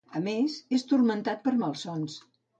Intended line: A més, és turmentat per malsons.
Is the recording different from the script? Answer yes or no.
no